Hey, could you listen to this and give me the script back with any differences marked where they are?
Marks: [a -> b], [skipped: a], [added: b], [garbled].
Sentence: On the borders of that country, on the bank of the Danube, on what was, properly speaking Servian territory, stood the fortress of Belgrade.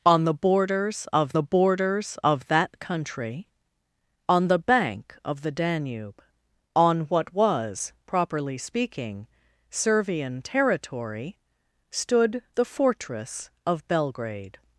On the borders of [added: the borders of] that country, on the bank of the Danube, on what was, properly speaking Servian territory, stood the fortress of Belgrade.